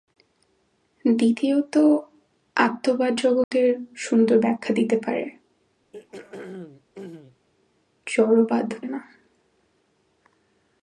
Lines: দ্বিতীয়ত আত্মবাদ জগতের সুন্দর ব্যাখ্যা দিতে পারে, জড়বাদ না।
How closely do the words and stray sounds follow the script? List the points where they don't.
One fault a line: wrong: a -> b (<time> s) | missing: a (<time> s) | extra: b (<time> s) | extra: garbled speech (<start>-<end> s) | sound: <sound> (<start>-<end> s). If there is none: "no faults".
sound: dropout (3.4-3.5 s)
sound: throat clearing (5.9-7.5 s)